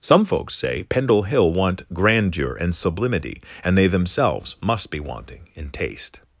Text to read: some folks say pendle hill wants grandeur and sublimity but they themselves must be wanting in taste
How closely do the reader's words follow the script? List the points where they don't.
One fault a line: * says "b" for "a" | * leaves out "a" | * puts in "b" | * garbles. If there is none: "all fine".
* says "want" for "wants"
* says "and" for "but"